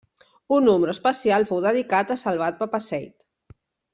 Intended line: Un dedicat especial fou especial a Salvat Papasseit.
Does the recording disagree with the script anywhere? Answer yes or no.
yes